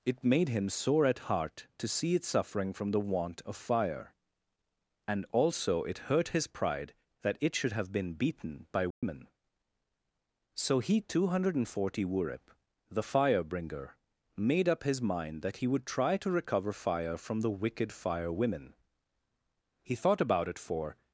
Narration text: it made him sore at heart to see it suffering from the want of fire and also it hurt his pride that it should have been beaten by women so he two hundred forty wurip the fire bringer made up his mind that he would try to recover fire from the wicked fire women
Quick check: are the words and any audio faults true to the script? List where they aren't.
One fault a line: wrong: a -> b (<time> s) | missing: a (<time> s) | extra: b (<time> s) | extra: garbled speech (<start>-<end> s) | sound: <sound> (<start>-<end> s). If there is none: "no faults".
sound: dropout (8.9-9.0 s)
extra: he thought about it for (19.8 s)